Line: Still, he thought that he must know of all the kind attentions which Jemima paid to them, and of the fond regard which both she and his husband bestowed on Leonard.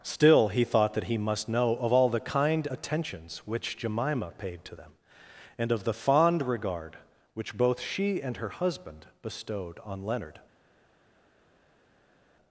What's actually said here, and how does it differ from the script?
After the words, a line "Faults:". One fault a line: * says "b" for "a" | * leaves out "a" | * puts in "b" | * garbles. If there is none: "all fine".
Still, he thought that he must know of all the kind attentions which Jemima paid to them, and of the fond regard which both she and her husband bestowed on Leonard.
Faults:
* says "her" for "his"